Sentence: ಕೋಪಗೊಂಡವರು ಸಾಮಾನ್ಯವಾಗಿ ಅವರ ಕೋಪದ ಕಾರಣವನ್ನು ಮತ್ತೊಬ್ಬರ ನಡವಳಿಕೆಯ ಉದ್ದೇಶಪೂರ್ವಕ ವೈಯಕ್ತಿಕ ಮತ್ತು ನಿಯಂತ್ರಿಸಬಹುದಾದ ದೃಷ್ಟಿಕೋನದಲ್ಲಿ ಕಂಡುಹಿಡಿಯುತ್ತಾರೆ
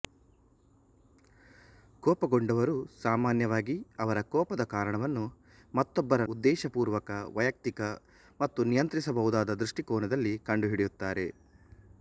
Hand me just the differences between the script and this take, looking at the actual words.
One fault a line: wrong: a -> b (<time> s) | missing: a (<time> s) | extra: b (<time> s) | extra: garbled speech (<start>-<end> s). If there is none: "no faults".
missing: ನಡವಳಿಕೆಯ (6.2 s)